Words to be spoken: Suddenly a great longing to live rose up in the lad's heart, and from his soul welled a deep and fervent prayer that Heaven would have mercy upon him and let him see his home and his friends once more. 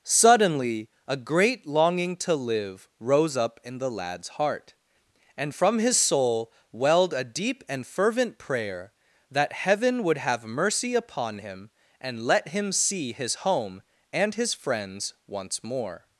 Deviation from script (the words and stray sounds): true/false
false